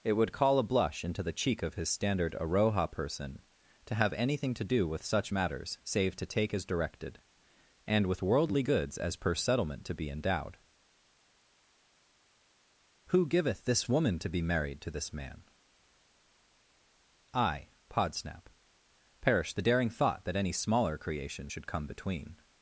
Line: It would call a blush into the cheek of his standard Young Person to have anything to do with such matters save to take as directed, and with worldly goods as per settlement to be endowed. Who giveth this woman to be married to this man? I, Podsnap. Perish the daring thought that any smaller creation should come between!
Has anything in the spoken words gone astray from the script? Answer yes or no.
yes